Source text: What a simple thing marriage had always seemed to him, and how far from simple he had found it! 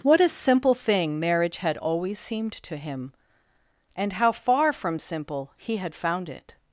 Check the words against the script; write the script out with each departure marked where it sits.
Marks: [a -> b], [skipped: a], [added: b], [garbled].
What a simple thing marriage had always seemed to him, and how far from simple he had found it!